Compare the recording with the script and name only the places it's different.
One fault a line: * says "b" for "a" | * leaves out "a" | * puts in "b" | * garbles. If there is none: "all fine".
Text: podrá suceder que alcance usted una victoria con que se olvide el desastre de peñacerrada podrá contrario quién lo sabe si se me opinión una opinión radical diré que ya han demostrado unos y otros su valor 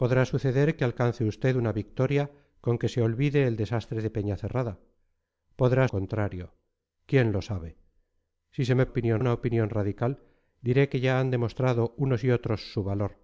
all fine